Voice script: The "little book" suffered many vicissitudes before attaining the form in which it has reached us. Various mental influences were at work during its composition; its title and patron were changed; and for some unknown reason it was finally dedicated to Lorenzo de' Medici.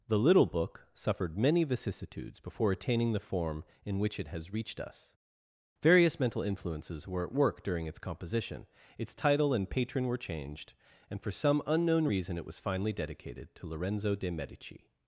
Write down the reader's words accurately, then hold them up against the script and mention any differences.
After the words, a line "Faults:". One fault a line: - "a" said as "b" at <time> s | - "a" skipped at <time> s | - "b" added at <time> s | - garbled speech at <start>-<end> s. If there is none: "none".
The "little book" suffered many vicissitudes before attaining the form in which it has reached us. Various mental influences were at work during its composition; its title and patron were changed; and for some unknown reason it was finally dedicated to Lorenzo de' Medici.
Faults:
none